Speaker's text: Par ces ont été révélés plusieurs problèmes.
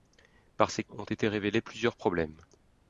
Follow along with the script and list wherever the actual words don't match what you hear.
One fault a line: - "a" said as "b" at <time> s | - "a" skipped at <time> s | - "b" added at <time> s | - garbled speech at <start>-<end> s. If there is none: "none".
none